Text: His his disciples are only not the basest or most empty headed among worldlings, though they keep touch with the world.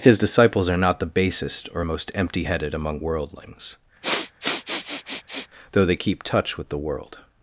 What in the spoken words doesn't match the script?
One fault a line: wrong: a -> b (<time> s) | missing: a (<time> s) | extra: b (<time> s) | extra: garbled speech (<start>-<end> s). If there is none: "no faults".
missing: his (0.2 s)
missing: only (0.8 s)